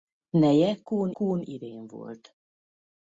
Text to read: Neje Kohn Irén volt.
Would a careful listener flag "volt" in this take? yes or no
no